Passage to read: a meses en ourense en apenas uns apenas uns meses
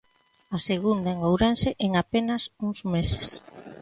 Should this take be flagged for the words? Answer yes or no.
yes